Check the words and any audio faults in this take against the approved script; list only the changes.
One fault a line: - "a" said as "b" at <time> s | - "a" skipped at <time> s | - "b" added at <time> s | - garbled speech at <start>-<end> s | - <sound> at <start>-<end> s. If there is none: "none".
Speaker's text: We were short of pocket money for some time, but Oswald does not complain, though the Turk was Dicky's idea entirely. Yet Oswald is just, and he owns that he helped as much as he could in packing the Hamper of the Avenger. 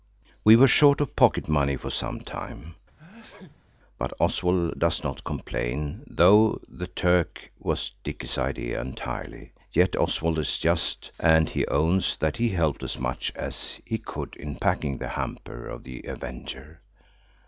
- sneeze at 3.0-3.7 s